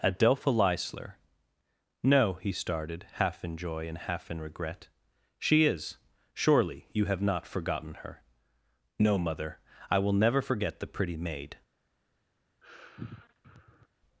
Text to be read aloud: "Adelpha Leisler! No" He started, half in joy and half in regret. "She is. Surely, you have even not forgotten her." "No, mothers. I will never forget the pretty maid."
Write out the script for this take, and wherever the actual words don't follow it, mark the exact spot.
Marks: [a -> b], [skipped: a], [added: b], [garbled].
"Adelpha Leisler! No" He started, half in joy and half in regret. "She is. Surely, you have [skipped: even] not forgotten her." "No, [mothers. -> mother] I will never forget the pretty maid."